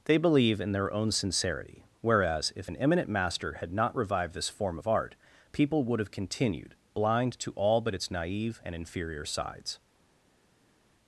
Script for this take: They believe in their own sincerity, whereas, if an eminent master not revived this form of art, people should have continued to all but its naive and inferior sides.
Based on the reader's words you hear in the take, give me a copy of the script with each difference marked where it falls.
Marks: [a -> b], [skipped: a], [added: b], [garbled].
They believe in their own sincerity, whereas, if an eminent master [added: had] not revived this form of art, people [should -> would] have continued [added: blind] to all but its naive and inferior sides.